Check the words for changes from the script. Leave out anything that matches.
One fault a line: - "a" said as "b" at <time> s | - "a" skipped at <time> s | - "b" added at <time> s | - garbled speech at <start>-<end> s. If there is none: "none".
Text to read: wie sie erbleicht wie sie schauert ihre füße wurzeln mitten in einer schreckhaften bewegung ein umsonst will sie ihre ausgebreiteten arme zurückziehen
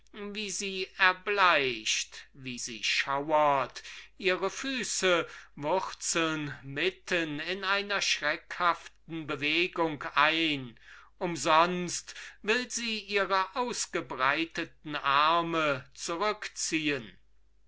none